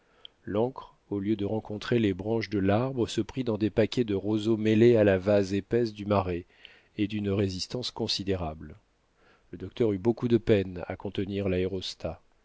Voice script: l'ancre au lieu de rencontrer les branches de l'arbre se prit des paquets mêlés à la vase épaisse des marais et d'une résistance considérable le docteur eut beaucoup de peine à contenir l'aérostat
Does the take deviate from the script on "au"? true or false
false